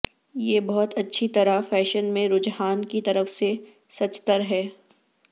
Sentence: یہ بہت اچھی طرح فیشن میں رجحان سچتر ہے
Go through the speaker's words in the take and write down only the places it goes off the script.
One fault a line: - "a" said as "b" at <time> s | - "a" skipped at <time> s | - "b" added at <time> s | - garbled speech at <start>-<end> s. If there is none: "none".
- "کی طرف سے" added at 2.9 s